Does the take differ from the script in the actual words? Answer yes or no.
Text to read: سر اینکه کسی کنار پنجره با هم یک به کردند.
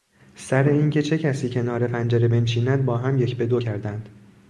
yes